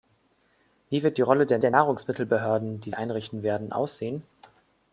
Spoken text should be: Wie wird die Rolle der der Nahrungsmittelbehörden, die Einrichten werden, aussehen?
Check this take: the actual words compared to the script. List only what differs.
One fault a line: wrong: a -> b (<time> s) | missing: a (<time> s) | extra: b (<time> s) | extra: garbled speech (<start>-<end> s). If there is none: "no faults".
no faults